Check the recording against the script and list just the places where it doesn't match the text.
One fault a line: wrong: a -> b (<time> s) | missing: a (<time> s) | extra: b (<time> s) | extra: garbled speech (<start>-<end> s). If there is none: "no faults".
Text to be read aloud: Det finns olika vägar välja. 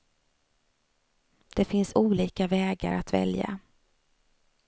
extra: att (2.9 s)